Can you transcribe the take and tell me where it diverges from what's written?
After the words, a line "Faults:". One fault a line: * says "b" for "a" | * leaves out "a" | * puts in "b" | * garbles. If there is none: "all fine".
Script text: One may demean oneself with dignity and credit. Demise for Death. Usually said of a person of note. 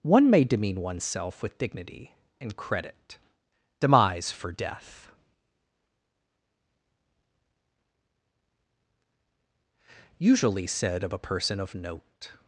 One may demean oneself with dignity and credit. Demise for Death. Usually said of a person of note.
Faults:
all fine